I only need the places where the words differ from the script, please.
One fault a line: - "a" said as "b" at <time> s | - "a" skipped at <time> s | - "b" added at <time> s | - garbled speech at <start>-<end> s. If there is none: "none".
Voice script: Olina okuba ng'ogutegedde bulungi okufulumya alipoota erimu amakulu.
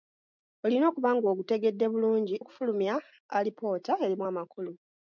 none